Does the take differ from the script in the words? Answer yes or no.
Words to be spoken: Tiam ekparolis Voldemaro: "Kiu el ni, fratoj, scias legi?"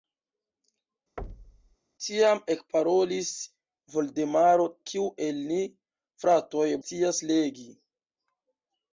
no